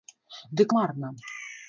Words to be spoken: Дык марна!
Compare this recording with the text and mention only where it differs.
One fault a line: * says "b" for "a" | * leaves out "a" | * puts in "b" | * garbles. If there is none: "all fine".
all fine